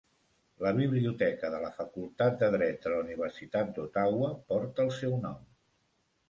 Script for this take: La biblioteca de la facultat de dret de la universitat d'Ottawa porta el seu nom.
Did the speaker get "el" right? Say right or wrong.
right